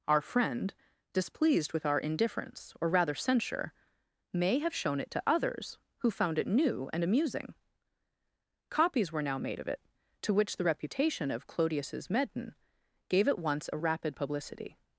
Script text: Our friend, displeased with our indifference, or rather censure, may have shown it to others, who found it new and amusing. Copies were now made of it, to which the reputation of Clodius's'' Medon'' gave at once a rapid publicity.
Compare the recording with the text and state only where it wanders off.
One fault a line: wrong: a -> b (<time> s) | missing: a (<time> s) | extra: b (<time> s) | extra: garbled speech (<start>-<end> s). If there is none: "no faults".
no faults